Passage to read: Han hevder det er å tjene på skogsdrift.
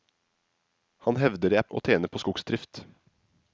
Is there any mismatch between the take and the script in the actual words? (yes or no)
no